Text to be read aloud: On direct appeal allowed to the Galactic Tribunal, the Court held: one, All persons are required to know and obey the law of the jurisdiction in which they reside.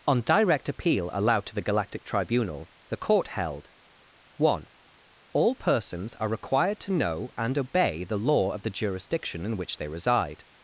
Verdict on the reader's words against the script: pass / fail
pass